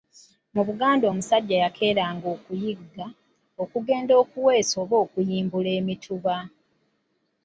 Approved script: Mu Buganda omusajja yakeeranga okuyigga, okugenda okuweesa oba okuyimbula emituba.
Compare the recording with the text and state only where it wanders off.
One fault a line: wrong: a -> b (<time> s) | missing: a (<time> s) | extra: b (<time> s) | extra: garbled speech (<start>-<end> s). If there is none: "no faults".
no faults